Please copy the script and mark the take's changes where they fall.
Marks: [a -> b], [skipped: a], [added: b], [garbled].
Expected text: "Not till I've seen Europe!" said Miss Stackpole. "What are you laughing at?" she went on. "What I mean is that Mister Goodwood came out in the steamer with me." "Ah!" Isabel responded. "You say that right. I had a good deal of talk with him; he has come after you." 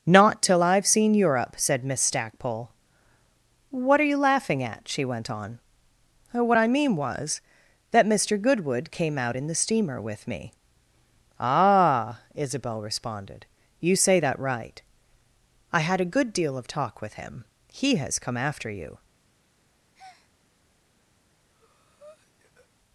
"Not till I've seen Europe!" said Miss Stackpole. "What are you laughing at?" she went on. "What I mean [is -> was] that Mister Goodwood came out in the steamer with me." "Ah!" Isabel responded. "You say that right. I had a good deal of talk with him; he has come after you."